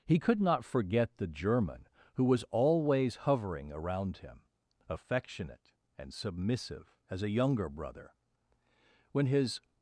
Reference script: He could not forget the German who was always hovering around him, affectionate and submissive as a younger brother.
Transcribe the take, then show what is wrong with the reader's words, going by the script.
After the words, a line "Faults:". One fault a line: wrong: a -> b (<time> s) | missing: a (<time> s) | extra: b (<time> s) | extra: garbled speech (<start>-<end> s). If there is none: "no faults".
He could not forget the German who was always hovering around him, affectionate and submissive as a younger brother. When his
Faults:
extra: When his (9.1 s)